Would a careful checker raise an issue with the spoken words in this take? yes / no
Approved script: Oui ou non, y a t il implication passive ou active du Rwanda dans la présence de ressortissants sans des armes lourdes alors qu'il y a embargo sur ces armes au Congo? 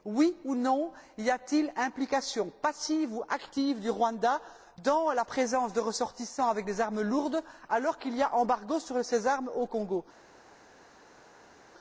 yes